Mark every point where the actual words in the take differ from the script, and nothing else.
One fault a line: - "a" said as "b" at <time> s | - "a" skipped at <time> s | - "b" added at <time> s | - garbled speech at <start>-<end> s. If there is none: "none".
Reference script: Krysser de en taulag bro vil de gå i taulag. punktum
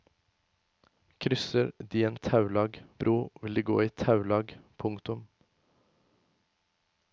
none